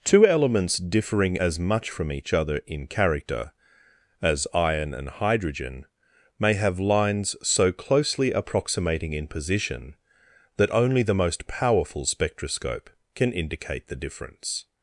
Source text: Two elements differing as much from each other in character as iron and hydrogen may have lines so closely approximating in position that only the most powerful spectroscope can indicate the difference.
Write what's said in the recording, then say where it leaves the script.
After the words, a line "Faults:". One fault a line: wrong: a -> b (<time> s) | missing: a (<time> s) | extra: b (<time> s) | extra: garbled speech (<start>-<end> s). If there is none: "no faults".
Two elements differing as much from each other in character as iron and hydrogen may have lines so closely approximating in position that only the most powerful spectroscope can indicate the difference.
Faults:
no faults